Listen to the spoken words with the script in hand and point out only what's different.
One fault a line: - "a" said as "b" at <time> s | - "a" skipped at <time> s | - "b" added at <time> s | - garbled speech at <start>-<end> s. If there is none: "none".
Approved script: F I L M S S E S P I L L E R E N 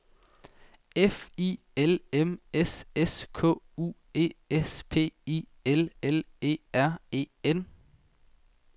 - "K U" added at 3.3 s